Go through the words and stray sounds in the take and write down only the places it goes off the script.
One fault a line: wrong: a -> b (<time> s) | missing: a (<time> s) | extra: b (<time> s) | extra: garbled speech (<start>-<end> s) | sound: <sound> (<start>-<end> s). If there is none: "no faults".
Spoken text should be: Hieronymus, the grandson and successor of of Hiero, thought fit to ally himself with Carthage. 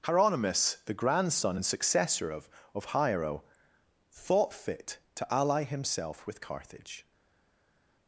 no faults